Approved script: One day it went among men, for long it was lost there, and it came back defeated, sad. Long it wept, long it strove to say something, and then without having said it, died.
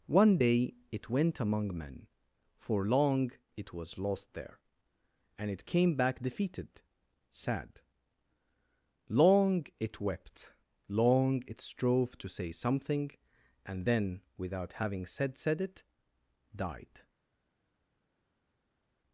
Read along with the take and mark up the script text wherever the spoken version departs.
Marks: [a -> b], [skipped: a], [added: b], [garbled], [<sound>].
One day it went among men, for long it was lost there, and it came back defeated, sad. Long it wept, long it strove to say something, and then without having said [added: said] it, died.